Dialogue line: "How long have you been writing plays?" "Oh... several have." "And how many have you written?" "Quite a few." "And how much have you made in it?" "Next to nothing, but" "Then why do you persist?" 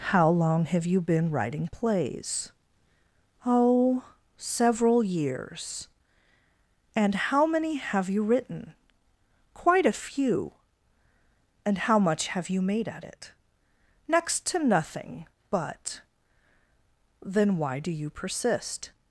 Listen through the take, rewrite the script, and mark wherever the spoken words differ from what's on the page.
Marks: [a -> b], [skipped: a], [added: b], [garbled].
"How long have you been writing plays?" "Oh... several [have." -> years] "And how many have you written?" "Quite a few." "And how much have you made [in -> at] it?" "Next to nothing, but" "Then why do you persist?"